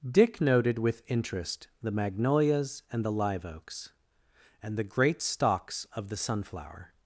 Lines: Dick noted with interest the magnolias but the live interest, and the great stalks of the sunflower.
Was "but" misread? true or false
true